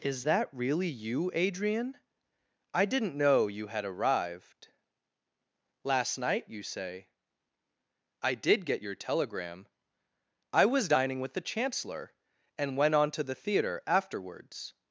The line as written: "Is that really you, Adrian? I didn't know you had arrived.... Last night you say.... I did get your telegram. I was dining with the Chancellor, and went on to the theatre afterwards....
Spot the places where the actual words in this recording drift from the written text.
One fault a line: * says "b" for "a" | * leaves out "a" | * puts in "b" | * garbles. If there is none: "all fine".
all fine